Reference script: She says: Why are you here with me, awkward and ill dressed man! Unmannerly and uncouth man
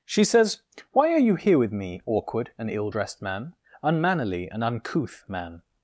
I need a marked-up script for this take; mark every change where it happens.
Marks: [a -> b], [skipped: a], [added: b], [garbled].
She says: Why are you here with me, awkward and ill dressed man! Unmannerly and uncouth man